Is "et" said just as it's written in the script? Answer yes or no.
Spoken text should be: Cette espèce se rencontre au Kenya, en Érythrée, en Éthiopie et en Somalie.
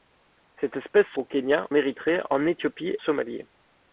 no